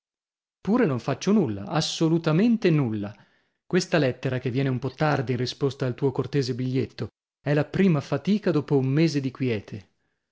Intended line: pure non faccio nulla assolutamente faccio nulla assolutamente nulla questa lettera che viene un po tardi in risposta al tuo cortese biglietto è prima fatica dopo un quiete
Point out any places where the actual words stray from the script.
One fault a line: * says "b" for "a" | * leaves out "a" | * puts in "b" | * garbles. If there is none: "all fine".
* leaves out "faccio"
* leaves out "assolutamente nulla"
* puts in "la"
* puts in "mese di"